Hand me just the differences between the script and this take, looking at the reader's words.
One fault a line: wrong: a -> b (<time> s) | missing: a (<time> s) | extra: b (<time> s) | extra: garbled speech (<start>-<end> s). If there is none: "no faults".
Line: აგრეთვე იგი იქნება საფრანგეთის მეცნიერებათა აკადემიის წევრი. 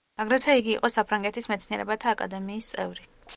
wrong: იქნება -> იყო (0.8 s)